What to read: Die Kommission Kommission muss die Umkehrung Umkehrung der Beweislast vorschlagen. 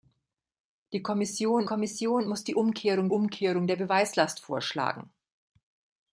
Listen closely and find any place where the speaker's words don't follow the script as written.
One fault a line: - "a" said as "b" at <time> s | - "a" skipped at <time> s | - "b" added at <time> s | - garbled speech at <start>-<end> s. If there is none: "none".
none